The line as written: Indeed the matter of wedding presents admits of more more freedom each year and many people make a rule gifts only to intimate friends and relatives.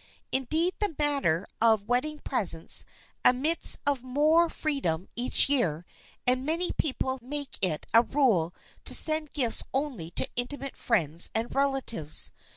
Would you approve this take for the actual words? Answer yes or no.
no